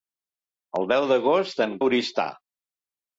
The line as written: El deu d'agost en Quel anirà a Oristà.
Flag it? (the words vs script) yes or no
yes